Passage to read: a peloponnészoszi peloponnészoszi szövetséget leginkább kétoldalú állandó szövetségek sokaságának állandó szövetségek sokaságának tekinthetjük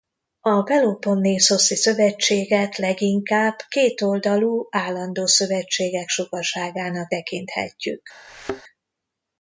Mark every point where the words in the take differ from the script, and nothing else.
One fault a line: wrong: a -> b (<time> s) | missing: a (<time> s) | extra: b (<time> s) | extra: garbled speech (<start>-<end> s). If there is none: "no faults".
missing: peloponnészoszi (1.8 s)
missing: állandó szövetségek sokaságának (7.1 s)